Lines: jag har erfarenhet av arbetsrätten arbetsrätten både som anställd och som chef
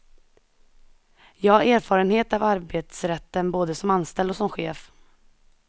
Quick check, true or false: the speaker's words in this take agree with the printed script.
false